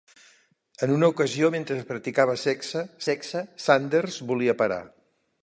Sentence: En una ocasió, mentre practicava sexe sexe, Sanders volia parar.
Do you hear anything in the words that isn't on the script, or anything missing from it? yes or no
no